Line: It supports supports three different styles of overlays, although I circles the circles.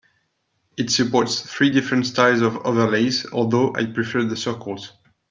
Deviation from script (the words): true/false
true